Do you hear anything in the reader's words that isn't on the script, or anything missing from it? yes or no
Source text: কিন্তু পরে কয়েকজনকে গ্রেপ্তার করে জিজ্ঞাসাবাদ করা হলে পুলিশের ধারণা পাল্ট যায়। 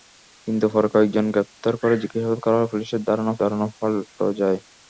yes